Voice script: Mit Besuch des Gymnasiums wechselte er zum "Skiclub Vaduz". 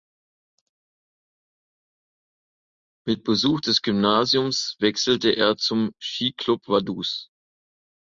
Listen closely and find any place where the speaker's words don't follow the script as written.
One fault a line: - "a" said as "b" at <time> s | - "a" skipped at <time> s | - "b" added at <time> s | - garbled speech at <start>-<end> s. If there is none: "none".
none